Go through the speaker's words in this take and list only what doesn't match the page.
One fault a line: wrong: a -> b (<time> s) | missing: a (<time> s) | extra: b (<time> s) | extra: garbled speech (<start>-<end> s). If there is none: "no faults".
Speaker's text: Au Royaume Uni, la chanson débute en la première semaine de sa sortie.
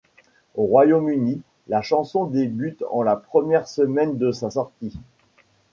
no faults